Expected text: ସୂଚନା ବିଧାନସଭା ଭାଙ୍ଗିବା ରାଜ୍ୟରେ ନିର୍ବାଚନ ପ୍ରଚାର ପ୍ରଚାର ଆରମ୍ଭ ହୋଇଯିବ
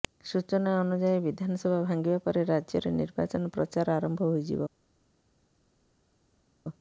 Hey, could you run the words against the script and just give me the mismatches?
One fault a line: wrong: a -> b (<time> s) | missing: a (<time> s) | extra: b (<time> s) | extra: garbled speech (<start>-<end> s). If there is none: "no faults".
extra: ଅନୁଯାୟୀ (0.8 s)
extra: ପରେ (2.2 s)
missing: ପ୍ରଚାର (4.0 s)